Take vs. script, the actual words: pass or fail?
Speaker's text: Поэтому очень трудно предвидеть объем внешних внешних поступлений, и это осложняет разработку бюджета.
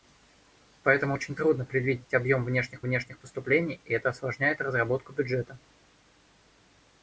pass